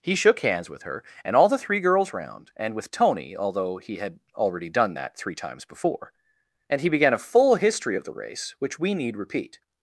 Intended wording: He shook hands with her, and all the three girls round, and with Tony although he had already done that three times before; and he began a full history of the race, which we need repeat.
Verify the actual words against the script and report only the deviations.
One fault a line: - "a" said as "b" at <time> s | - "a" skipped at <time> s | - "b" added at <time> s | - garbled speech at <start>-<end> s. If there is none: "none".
none